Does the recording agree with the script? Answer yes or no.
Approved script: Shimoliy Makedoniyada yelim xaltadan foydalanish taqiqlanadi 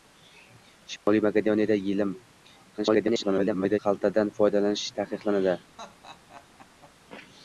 no